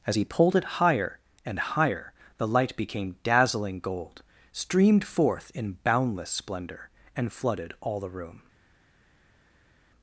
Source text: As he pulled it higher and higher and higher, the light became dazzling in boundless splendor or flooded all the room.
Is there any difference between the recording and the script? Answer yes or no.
yes